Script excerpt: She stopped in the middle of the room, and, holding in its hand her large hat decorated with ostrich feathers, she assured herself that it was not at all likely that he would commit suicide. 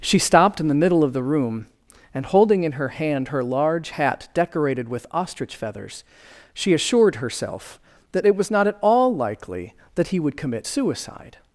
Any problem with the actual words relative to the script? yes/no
yes